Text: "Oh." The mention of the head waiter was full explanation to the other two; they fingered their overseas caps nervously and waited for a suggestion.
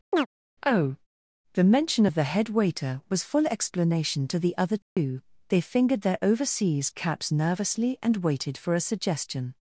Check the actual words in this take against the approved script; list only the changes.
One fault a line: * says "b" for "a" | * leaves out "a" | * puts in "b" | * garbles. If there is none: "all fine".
all fine